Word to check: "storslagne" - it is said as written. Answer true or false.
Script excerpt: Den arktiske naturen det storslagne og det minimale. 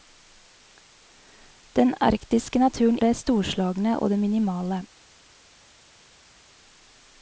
true